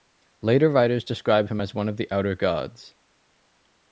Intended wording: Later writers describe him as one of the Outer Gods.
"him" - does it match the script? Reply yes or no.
yes